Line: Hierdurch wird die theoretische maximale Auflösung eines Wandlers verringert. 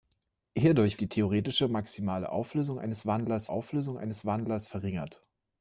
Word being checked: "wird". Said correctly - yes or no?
no